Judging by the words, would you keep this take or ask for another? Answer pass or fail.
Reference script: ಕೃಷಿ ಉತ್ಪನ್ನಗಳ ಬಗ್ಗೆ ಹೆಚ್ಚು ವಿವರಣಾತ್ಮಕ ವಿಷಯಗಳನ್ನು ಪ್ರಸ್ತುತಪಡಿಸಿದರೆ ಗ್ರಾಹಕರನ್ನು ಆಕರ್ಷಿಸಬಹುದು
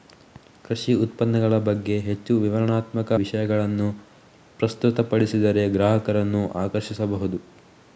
pass